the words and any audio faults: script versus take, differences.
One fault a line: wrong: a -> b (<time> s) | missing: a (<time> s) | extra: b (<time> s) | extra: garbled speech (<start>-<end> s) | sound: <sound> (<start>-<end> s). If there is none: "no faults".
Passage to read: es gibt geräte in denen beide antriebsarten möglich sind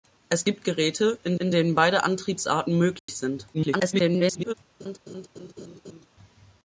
extra: in (1.4 s)
sound: dropout (3.0-3.1 s)
extra: garbled speech (3.5-4.5 s)
sound: laugh (4.8-6.1 s)